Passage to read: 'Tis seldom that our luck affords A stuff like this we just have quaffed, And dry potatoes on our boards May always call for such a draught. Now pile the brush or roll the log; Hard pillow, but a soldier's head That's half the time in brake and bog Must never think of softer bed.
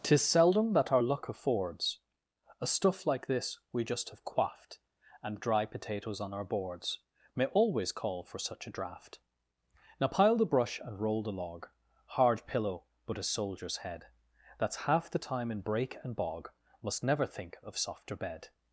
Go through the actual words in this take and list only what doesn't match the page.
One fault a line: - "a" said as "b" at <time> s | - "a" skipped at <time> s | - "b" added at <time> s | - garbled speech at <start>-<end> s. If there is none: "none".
- "or" said as "and" at 10.8 s